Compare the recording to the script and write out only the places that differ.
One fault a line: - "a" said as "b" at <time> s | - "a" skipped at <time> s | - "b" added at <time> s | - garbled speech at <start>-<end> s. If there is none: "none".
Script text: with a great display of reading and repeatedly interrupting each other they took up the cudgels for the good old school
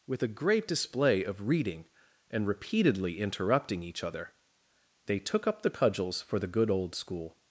none